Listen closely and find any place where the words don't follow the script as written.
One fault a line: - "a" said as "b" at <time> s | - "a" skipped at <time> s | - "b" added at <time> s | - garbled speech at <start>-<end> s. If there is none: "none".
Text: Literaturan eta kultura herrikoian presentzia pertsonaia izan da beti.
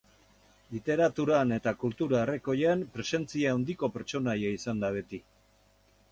- "handiko" added at 3.6 s